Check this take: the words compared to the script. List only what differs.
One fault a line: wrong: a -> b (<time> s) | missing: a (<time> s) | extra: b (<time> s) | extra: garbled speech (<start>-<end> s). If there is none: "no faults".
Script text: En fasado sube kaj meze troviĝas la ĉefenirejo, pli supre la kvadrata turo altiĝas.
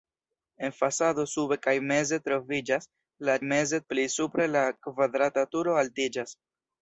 wrong: ĉefenirejo -> meze (3.5 s)